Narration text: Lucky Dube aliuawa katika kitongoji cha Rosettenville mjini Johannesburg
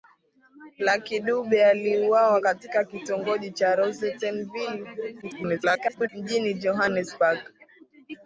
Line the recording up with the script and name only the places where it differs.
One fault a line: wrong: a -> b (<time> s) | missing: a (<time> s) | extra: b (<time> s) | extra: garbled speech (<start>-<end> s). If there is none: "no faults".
extra: garbled speech (5.2-6.1 s)